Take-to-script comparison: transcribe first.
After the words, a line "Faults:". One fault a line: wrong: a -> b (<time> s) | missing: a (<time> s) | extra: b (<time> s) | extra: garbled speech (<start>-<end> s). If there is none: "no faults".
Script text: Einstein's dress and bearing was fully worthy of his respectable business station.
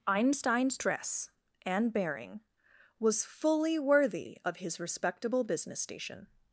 Einstein's dress and bearing was fully worthy of his respectable business station.
Faults:
no faults